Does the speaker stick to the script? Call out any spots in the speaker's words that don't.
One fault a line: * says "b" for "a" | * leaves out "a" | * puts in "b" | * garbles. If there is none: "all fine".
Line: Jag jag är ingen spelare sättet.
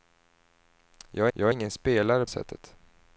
all fine